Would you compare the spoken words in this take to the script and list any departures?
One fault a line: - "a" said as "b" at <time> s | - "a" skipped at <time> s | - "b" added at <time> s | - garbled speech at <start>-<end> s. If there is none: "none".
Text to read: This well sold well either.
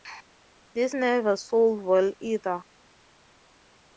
- "well" said as "never" at 0.9 s